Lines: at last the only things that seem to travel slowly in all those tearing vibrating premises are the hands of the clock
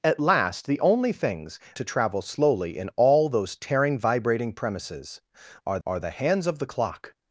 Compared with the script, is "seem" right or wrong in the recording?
wrong